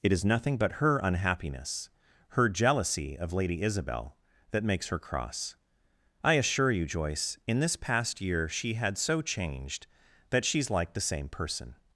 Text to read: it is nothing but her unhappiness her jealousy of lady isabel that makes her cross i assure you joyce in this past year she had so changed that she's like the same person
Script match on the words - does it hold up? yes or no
yes